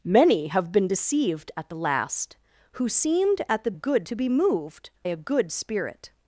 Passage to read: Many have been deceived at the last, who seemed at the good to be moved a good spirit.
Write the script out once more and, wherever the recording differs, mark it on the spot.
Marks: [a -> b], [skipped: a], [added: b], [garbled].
Many have been deceived at the last, who seemed at the good to be moved a good spirit.